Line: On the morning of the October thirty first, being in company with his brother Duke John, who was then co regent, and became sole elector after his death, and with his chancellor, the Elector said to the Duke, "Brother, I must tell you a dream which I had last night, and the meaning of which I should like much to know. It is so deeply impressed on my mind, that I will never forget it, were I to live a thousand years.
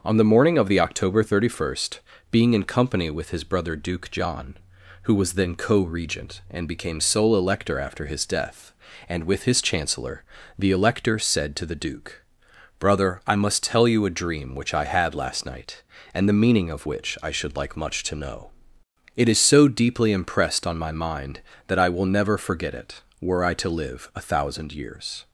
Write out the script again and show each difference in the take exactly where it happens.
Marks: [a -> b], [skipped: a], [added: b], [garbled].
On the morning of the October thirty first, being in company with his brother Duke John, who was then co regent, and became sole elector after his death, and with his chancellor, the Elector said to the Duke, "Brother, I must tell you a dream which I had last night, and the meaning of which I should like much to know. It is so deeply impressed on my mind, that I will never forget it, were I to live a thousand years.